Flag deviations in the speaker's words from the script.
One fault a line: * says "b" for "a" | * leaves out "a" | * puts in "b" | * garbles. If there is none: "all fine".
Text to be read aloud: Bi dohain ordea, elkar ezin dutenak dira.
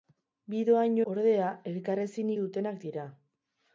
all fine